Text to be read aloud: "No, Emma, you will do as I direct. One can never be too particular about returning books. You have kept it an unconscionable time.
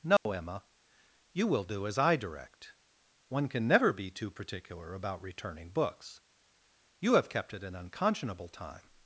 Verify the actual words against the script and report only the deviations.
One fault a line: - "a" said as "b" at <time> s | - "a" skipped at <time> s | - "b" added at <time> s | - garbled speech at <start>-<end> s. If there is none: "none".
none